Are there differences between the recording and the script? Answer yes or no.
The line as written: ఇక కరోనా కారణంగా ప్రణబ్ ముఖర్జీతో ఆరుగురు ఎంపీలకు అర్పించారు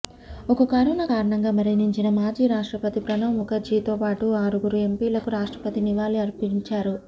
yes